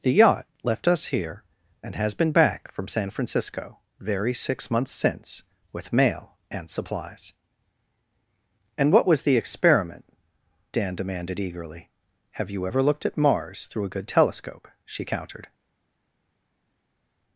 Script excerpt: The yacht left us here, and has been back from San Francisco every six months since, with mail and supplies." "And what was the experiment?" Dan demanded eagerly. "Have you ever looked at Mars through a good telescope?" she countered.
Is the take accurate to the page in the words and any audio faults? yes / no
no